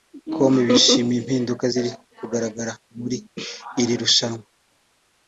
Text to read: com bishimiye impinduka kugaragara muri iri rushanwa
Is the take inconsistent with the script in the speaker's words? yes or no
yes